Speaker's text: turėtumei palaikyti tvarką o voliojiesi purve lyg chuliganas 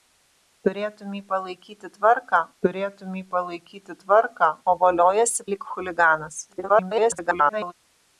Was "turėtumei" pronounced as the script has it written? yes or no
yes